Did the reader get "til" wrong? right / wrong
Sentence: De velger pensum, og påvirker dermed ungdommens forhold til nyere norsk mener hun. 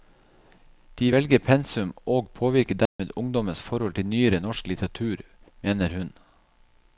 right